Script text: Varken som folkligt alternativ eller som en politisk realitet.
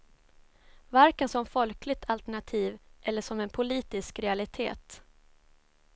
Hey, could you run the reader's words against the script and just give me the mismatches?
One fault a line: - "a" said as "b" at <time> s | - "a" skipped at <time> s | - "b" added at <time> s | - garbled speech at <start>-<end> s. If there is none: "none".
none